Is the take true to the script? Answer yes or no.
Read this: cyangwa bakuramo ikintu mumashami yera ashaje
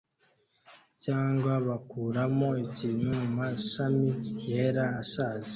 yes